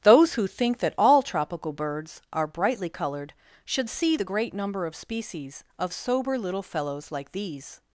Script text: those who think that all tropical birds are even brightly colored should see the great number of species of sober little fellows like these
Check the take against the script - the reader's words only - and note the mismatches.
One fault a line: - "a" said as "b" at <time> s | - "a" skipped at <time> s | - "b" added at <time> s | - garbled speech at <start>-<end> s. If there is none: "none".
- "even" skipped at 2.5 s